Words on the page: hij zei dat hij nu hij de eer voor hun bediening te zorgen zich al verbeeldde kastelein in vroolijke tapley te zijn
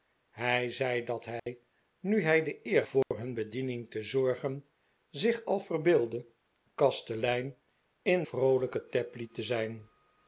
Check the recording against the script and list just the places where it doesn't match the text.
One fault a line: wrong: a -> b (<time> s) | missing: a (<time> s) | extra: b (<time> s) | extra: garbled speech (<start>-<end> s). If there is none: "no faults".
no faults